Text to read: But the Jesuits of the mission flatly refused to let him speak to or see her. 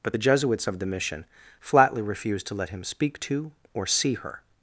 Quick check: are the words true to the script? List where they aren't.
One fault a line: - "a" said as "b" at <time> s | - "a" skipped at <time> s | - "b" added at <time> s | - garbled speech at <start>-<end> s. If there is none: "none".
none